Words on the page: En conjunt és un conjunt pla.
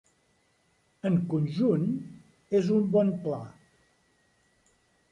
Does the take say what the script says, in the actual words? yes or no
no